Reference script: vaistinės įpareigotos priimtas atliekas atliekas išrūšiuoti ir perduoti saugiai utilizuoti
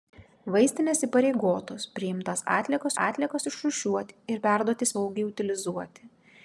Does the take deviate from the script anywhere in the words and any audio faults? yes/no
no